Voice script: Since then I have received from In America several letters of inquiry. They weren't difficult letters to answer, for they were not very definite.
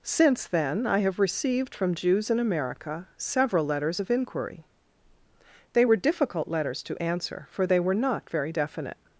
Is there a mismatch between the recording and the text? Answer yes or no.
yes